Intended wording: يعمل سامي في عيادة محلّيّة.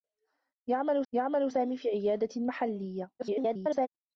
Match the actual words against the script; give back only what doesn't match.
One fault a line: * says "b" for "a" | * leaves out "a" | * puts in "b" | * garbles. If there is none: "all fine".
* puts in "يعمل"
* garbles